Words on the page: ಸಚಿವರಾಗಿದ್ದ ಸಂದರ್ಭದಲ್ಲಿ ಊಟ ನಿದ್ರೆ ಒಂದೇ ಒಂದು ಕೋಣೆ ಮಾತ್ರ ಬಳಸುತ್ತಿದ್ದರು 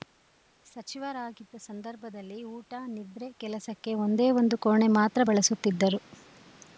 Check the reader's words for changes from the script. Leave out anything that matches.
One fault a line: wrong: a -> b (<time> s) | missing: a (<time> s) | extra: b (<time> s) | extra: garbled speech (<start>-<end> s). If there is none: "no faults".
extra: ಕೆಲಸಕ್ಕೆ (3.4 s)